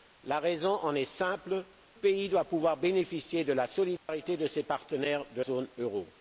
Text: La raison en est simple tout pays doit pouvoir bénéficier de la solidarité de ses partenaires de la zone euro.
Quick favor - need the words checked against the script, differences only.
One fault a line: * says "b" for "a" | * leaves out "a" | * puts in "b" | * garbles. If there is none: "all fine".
* leaves out "tout"
* leaves out "la"